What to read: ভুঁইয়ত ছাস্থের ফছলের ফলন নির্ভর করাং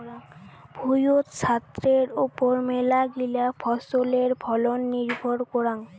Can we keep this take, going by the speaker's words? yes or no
no